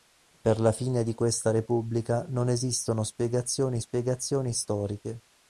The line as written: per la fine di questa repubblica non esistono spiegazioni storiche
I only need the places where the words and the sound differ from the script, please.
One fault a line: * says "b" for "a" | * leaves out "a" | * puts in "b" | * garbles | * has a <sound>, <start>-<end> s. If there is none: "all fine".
* puts in "spiegazioni"